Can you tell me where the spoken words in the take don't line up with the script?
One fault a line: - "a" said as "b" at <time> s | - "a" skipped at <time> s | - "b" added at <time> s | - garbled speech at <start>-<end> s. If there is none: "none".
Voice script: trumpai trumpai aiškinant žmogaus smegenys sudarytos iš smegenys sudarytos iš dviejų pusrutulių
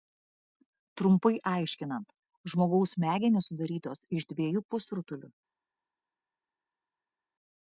- "trumpai" skipped at 1.3 s
- "smegenys sudarytos iš" skipped at 4.3 s